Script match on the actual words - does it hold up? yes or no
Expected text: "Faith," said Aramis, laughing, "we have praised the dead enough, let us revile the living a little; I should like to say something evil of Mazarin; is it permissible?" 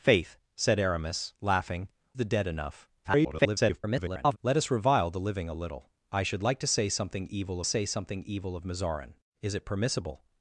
no